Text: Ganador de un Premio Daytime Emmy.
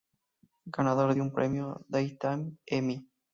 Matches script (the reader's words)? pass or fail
pass